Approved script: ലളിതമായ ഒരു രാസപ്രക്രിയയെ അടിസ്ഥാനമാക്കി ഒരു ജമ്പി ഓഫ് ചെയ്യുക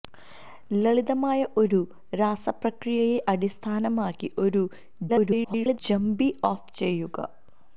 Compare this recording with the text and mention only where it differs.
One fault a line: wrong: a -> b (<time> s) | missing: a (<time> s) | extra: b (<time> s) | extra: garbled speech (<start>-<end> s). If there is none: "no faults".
extra: garbled speech (5.1-5.8 s)